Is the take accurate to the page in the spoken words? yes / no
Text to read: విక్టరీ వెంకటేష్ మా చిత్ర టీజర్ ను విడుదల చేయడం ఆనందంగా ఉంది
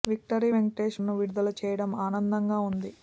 no